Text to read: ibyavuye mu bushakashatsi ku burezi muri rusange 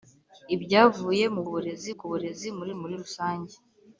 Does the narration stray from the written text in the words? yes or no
yes